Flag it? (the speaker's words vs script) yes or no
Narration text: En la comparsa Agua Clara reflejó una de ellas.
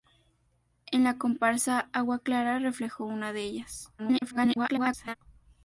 yes